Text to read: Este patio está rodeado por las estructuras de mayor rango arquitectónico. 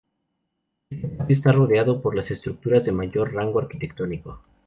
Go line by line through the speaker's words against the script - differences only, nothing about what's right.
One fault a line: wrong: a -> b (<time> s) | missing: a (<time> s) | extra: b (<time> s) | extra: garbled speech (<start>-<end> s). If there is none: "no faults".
no faults